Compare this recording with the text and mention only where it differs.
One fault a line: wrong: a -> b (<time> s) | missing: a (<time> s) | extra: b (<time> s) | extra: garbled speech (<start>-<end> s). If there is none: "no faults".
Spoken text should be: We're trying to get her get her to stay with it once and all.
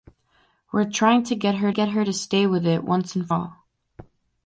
no faults